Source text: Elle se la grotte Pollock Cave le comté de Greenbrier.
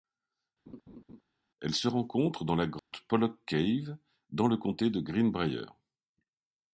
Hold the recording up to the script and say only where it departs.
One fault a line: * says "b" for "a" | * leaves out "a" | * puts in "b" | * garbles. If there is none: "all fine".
* puts in "rencontre dans"
* puts in "dans"